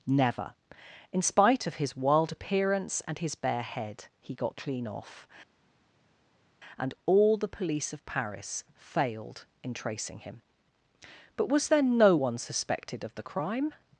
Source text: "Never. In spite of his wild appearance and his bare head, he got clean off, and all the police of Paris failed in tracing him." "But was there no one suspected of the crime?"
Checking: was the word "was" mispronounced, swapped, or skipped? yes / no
no